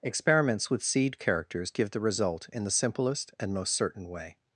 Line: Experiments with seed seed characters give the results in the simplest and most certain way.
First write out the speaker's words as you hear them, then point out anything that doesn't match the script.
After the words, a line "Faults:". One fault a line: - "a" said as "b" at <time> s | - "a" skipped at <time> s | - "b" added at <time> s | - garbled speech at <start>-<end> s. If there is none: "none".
Experiments with seed characters give the result in the simplest and most certain way.
Faults:
- "seed" skipped at 1.2 s
- "results" said as "result" at 2.0 s